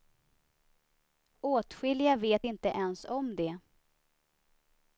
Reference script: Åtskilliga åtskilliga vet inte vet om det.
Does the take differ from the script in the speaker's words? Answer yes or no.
yes